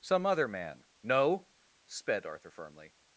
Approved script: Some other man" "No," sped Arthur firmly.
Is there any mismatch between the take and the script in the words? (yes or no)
no